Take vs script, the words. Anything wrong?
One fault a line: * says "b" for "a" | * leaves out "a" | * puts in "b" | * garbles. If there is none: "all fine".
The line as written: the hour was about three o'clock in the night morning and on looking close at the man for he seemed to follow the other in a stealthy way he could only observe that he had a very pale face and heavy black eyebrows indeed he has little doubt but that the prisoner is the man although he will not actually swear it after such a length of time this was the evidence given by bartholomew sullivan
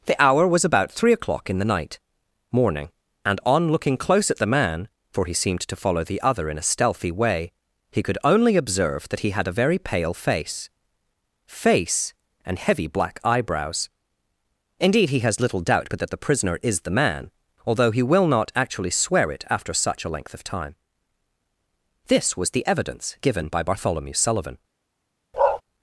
* puts in "face"